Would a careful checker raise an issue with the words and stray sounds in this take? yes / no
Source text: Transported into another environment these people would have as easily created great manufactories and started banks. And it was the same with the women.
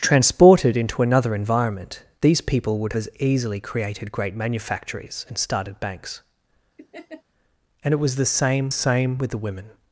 yes